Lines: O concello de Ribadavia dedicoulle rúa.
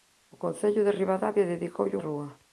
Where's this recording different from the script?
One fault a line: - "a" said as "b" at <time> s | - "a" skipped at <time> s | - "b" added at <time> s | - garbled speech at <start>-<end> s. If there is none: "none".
none